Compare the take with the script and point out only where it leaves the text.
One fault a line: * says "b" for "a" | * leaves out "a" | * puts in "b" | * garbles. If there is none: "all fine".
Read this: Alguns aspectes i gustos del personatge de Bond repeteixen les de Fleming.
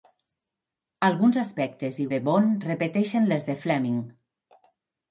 * leaves out "gustos del personatge"